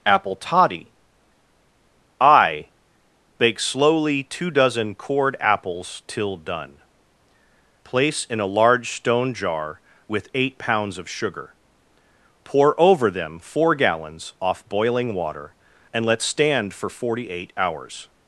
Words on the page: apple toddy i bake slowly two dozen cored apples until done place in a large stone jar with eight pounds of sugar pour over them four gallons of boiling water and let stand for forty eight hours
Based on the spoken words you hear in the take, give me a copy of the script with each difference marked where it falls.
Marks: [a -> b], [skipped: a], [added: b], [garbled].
apple toddy i bake slowly two dozen cored apples [until -> till] done place in a large stone jar with eight pounds of sugar pour over them four gallons [of -> off] boiling water and let stand for forty eight hours